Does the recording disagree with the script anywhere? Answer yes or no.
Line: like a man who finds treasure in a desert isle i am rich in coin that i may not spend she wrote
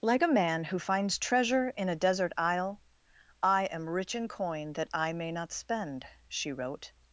no